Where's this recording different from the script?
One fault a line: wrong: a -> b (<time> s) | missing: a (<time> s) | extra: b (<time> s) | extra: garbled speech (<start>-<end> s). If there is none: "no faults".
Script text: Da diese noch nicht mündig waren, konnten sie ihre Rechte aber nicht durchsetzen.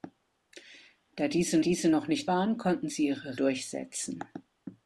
extra: diese (1.6 s)
missing: mündig (2.3 s)
missing: Rechte aber nicht (3.4 s)